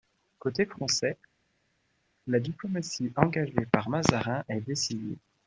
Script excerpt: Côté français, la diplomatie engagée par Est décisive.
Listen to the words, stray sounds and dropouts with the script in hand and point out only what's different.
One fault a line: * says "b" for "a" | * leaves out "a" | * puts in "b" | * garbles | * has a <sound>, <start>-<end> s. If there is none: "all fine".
* puts in "Mazarin"